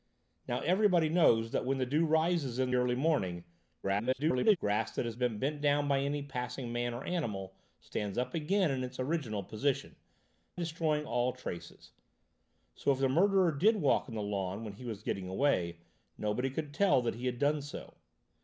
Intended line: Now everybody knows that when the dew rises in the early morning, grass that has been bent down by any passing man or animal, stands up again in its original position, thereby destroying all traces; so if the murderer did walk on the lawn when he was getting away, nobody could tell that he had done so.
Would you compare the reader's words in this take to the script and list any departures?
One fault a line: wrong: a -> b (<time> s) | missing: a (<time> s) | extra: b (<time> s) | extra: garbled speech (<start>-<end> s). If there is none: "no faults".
missing: the (2.7 s)
extra: garbled speech (3.8-4.6 s)
missing: thereby (9.9 s)